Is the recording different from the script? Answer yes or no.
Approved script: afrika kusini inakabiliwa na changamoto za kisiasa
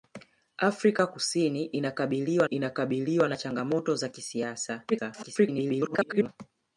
yes